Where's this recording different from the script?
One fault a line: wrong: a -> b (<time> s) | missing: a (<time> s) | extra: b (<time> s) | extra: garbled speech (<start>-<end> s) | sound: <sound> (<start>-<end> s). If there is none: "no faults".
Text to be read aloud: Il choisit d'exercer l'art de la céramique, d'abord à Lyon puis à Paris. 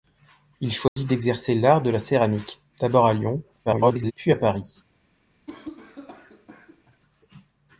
sound: dropout (0.9-1.0 s)
extra: garbled speech (3.7-4.1 s)
sound: cough (5.5-7.0 s)